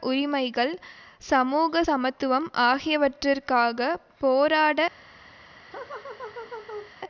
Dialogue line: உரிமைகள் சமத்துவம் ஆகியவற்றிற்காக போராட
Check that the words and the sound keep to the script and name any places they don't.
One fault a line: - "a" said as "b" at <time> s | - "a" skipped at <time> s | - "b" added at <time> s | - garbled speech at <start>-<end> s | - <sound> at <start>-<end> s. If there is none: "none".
- "சமூக" added at 1.2 s
- laugh at 5.7-7.0 s